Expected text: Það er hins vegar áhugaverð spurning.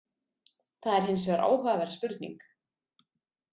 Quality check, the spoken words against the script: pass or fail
pass